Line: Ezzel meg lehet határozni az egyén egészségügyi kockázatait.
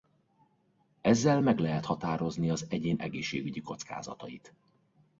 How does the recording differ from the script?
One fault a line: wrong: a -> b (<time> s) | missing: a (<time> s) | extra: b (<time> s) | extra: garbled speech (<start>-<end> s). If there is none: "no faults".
no faults